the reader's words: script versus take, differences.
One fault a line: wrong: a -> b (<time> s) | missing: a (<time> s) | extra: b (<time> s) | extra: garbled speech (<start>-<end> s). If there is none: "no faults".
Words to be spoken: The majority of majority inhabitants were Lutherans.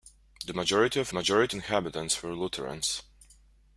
no faults